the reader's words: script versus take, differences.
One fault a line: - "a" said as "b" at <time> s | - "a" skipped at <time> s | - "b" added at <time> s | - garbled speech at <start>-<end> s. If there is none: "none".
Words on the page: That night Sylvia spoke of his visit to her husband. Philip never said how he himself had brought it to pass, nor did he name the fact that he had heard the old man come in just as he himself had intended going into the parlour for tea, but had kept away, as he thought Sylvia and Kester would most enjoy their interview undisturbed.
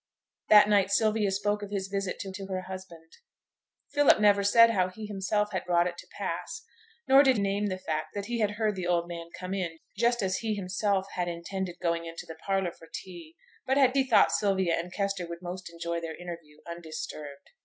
- "to" added at 2.4 s
- "he" skipped at 7.4 s
- "kept away as" skipped at 13.9 s